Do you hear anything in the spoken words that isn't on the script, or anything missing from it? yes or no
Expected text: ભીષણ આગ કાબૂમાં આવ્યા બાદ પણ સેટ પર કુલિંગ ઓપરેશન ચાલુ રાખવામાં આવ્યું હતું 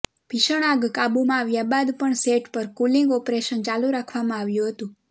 no